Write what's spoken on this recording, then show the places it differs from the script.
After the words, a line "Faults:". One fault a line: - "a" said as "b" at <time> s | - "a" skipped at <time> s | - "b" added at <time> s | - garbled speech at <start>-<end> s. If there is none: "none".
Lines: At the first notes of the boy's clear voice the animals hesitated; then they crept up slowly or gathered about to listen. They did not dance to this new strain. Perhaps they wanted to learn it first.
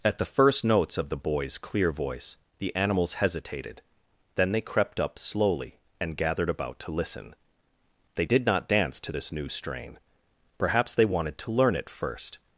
At the first notes of the boy's clear voice the animals hesitated; then they crept up slowly and gathered about to listen. They did not dance to this new strain. Perhaps they wanted to learn it first.
Faults:
- "or" said as "and" at 6.0 s